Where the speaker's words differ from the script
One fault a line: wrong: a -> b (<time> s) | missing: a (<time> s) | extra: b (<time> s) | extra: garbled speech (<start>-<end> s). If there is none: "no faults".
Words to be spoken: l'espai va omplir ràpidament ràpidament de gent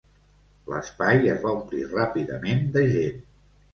extra: es (1.3 s)
missing: ràpidament (2.6 s)